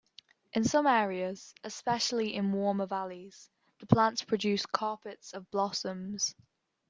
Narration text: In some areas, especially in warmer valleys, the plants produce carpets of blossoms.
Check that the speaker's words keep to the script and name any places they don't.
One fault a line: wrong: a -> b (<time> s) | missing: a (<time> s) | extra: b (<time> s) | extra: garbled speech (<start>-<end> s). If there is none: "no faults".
no faults